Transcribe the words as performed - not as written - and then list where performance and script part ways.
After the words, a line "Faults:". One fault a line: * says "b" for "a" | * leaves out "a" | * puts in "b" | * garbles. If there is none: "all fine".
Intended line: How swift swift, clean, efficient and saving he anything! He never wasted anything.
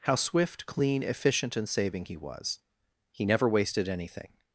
How swift, clean, efficient and saving he was! He never wasted anything.
Faults:
* leaves out "swift"
* says "was" for "anything"